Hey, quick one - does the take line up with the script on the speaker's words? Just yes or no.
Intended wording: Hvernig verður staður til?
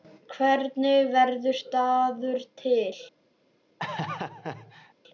yes